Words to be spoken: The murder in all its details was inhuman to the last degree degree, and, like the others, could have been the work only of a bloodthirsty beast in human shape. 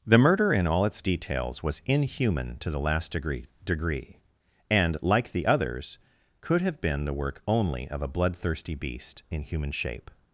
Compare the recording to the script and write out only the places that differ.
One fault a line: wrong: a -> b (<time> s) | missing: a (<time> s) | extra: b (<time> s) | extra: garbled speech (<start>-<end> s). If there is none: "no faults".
no faults